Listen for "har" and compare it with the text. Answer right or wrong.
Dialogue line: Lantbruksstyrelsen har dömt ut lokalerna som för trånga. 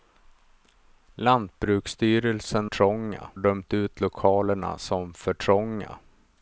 wrong